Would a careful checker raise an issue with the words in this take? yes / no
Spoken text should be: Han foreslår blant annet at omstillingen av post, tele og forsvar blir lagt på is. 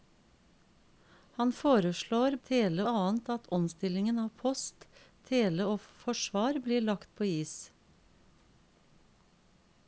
yes